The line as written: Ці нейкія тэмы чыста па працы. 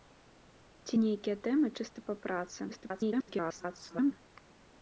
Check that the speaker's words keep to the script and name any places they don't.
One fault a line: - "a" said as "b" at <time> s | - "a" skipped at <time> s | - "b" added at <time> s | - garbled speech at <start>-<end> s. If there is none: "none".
- garbled speech at 2.7-4.1 s